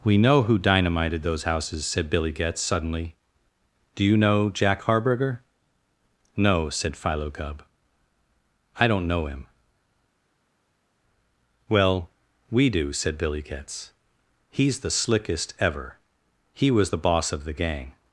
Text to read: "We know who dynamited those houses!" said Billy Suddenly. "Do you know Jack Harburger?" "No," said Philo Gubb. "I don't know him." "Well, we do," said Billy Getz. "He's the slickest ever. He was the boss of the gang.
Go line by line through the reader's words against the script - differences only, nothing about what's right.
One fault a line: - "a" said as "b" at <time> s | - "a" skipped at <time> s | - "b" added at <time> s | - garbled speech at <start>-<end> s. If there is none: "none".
- "Getz" added at 2.3 s